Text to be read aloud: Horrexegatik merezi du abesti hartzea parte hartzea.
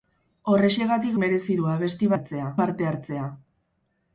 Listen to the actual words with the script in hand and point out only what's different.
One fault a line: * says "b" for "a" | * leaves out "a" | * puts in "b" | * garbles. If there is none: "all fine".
all fine